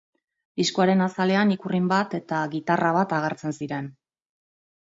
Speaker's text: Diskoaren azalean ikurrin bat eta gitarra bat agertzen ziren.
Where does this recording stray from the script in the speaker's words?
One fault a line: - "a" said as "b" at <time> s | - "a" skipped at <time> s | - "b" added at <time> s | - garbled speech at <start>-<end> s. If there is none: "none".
none